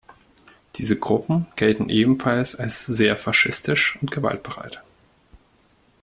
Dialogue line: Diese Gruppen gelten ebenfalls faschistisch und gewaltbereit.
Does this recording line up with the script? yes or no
no